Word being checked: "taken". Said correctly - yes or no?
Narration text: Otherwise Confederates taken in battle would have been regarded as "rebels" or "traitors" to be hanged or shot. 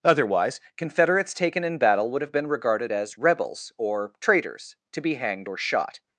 yes